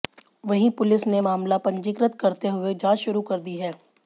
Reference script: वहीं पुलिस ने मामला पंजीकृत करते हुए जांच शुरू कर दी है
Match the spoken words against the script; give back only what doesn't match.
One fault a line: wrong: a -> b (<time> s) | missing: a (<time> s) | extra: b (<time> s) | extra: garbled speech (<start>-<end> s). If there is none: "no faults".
no faults